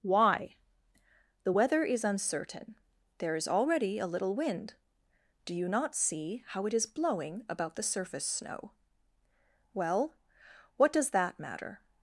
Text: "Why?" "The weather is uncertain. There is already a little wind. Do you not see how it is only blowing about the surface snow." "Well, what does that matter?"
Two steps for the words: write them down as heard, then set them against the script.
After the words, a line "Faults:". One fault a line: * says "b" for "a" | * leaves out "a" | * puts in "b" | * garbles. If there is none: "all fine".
"Why?" "The weather is uncertain. There is already a little wind. Do you not see how it is blowing about the surface snow." "Well, what does that matter?"
Faults:
* leaves out "only"